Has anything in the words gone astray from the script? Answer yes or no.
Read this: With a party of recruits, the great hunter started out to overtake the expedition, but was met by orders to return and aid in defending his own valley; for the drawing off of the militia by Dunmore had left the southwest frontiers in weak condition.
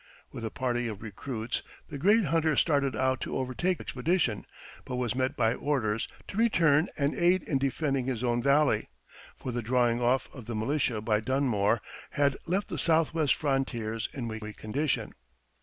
yes